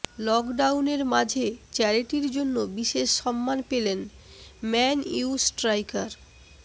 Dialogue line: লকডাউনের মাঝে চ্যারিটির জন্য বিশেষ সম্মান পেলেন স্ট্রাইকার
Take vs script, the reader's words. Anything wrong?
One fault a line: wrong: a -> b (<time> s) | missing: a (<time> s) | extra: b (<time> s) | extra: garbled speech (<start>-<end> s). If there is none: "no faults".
extra: ম্যান ইউ (4.6 s)